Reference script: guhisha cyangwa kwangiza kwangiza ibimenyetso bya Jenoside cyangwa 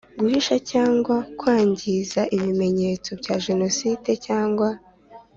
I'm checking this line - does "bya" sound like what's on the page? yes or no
yes